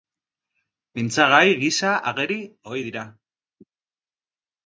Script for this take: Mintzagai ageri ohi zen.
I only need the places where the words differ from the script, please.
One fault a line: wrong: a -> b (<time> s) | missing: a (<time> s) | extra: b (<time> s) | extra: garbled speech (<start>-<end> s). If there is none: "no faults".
extra: gisa (1.6 s)
wrong: zen -> dira (2.9 s)